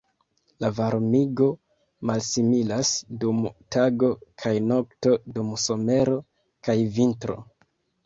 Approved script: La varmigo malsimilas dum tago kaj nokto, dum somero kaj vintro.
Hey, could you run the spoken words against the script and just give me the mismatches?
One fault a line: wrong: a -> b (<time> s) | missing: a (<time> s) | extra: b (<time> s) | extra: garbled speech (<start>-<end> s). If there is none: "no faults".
no faults